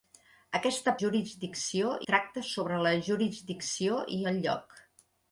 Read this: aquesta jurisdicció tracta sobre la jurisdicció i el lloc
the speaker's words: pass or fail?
pass